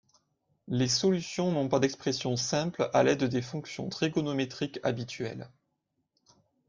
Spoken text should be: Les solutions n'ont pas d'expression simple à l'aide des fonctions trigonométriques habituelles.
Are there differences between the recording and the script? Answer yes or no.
no